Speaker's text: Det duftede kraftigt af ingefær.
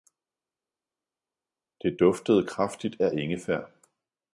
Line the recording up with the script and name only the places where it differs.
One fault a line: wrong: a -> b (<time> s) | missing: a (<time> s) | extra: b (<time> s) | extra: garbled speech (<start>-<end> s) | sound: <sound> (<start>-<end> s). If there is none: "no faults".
no faults